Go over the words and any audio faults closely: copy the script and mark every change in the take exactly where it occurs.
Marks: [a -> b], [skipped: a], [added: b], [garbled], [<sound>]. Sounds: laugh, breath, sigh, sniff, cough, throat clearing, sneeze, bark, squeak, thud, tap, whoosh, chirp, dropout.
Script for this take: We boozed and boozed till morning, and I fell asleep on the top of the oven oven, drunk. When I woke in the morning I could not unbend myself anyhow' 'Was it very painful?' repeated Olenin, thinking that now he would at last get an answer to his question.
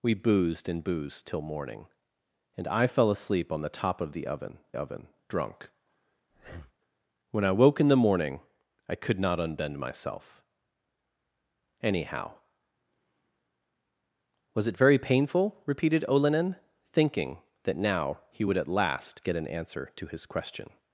We boozed and boozed till morning, and I fell asleep on the top of the oven oven, drunk. [breath] When I woke in the morning I could not unbend myself anyhow' 'Was it very painful?' repeated Olenin, thinking that now he would at last get an answer to his question.